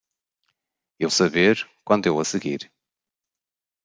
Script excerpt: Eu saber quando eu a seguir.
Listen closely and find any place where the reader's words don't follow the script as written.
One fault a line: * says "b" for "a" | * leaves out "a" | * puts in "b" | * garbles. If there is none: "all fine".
all fine